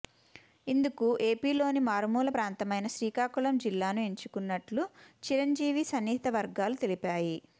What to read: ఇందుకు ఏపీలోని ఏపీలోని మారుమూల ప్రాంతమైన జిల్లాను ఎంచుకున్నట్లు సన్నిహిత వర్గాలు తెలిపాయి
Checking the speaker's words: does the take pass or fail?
fail